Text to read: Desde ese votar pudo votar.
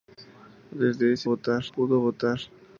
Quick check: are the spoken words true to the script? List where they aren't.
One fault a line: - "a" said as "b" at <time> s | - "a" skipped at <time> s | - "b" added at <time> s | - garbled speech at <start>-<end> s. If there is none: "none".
none